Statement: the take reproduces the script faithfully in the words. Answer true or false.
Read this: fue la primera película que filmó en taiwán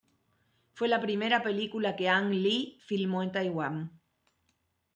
false